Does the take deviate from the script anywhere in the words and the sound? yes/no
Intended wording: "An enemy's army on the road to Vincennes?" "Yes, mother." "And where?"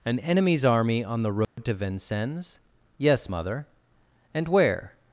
yes